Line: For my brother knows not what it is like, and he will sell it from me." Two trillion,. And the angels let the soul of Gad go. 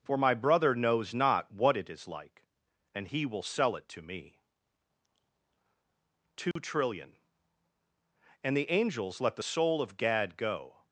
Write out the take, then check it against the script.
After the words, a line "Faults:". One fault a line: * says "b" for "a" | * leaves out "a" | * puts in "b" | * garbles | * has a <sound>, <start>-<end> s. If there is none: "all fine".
For my brother knows not what it is like, and he will sell it to me." Two trillion,. And the angels let the soul of Gad go.
Faults:
* says "to" for "from"
* has a dropout, 6.5-6.6 s